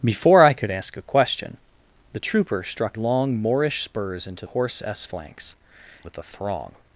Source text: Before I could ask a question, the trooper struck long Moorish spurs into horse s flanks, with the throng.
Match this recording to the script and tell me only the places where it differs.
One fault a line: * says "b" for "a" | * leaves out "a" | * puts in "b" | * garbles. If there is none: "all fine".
all fine